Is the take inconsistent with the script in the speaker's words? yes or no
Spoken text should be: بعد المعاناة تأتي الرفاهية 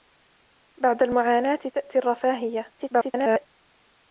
yes